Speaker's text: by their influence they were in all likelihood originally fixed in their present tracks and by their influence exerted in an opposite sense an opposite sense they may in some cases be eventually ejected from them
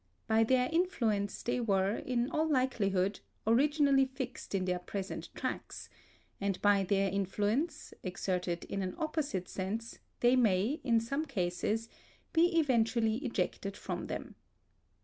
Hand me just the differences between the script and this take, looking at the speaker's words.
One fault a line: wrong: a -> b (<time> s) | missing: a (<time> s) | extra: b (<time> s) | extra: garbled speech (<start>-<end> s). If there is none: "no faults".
missing: an opposite sense (10.0 s)